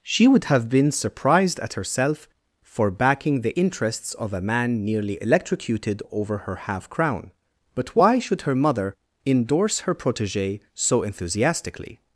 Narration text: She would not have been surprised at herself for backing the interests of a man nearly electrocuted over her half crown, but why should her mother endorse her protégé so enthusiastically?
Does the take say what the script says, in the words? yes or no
no